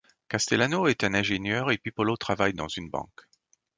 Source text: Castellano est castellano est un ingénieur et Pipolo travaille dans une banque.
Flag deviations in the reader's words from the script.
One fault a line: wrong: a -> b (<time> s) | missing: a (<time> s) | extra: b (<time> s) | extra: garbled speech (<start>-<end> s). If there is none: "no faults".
missing: castellano est (1.0 s)